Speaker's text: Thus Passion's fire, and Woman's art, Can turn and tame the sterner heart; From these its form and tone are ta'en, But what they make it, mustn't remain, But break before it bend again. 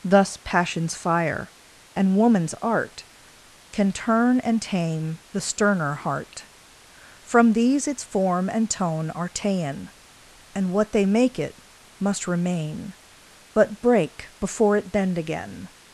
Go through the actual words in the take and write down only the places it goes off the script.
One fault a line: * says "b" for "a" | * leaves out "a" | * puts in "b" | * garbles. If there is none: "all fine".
* says "And" for "But"
* says "must" for "mustn't"